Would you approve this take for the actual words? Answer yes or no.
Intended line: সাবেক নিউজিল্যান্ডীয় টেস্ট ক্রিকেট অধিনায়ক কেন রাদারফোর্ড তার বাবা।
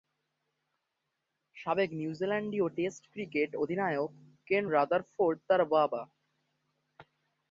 yes